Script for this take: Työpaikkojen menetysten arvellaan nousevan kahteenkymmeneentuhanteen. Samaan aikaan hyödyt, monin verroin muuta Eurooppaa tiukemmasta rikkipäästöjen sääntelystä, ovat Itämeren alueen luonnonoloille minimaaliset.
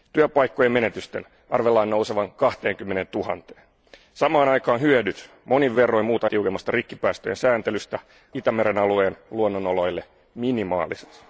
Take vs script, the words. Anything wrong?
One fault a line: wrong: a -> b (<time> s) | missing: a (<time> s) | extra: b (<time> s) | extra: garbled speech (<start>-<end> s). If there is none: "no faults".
missing: Eurooppaa (6.3 s)
missing: ovat (8.0 s)